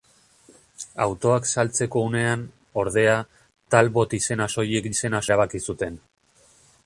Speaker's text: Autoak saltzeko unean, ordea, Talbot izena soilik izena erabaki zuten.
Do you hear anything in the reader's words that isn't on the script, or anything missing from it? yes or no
no